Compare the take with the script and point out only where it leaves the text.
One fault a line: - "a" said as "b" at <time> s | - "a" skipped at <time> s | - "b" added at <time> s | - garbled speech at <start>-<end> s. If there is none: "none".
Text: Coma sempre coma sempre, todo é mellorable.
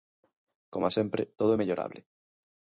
- "coma sempre" skipped at 1.2 s